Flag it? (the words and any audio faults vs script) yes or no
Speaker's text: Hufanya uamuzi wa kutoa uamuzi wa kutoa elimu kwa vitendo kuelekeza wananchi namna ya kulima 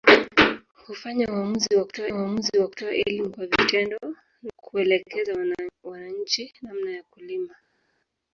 no